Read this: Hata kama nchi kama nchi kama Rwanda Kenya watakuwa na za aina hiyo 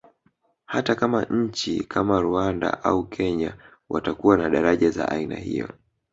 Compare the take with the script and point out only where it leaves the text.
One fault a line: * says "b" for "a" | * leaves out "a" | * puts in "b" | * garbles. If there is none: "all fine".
* says "Rwanda au" for "nchi kama Rwanda"
* puts in "daraja"